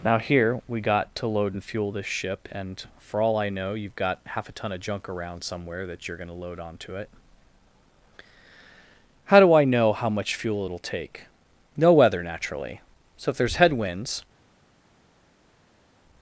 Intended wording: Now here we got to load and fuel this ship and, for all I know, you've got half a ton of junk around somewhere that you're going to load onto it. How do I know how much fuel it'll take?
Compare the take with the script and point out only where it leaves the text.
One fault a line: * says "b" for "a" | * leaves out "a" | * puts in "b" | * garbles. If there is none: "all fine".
* puts in "No weather naturally So if there's headwinds"